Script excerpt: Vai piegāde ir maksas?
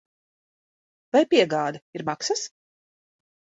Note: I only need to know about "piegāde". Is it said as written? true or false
true